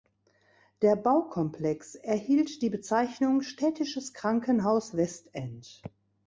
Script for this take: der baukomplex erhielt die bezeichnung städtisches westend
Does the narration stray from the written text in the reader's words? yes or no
yes